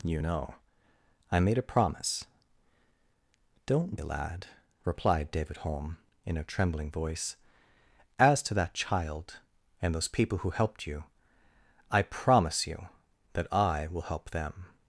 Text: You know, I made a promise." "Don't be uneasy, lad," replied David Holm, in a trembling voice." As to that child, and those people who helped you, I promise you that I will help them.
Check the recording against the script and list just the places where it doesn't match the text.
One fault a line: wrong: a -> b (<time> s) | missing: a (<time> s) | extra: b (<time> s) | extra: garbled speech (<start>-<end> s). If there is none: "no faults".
missing: be uneasy (4.0 s)